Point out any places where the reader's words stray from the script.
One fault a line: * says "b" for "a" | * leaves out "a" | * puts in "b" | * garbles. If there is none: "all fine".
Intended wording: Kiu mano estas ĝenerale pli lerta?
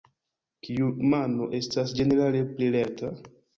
all fine